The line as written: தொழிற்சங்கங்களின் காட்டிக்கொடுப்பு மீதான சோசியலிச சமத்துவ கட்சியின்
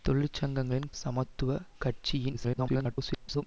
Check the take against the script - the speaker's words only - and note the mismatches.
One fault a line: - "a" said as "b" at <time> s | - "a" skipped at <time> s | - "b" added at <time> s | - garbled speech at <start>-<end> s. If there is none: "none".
- "காட்டிக்கொடுப்பு மீதான சோசியலிச" skipped at 0.9 s
- garbled speech at 2.3-3.4 s